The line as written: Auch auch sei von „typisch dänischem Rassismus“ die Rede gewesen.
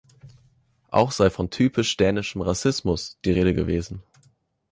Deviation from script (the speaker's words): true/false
true